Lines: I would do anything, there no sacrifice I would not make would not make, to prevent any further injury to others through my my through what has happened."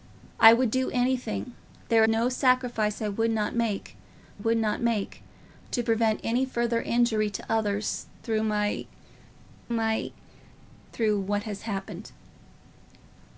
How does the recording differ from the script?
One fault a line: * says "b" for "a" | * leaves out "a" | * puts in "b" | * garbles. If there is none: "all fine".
all fine